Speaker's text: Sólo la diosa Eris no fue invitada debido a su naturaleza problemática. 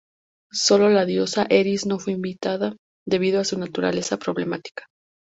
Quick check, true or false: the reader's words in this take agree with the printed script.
true